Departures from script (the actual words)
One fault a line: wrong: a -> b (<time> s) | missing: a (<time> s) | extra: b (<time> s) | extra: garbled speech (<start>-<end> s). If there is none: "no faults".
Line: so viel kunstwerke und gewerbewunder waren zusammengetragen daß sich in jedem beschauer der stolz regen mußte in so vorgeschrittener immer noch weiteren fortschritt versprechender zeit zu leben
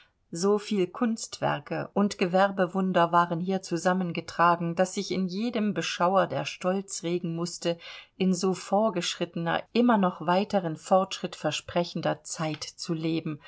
extra: hier (3.4 s)